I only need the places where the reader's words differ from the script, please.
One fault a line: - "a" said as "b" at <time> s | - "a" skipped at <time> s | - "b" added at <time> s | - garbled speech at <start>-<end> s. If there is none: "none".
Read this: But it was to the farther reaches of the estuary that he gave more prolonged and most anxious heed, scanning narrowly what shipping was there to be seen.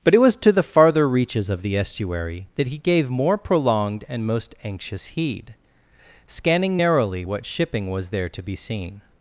none